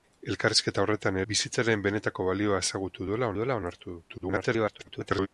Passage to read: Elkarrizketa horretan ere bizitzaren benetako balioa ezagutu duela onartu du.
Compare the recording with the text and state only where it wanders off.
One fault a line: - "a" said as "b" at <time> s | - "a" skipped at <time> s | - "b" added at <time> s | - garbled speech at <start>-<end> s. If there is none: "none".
- "ere" skipped at 1.2 s
- "duela" added at 3.4 s
- garbled speech at 4.1-5.3 s